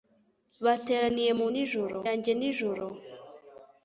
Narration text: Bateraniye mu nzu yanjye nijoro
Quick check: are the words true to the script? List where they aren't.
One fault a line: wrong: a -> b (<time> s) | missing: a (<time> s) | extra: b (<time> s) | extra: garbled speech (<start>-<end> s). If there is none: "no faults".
wrong: nzu -> nijoro (1.5 s)